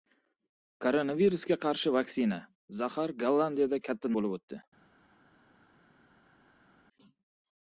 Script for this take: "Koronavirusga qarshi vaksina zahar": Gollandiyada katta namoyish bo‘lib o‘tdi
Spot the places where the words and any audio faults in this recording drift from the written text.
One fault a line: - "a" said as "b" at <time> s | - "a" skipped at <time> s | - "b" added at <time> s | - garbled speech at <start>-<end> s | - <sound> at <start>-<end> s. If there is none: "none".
- "namoyish" skipped at 4.2 s